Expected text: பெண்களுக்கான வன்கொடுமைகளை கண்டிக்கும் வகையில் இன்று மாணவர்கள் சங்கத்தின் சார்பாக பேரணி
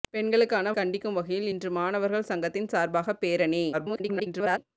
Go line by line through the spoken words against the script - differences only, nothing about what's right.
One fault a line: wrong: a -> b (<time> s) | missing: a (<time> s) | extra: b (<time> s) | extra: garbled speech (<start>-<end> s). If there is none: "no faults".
missing: வன்கொடுமைகளை (0.7 s)
extra: garbled speech (3.7-4.6 s)